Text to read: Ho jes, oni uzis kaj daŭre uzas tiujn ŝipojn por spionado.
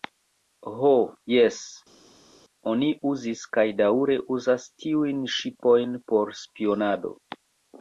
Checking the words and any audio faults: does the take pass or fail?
pass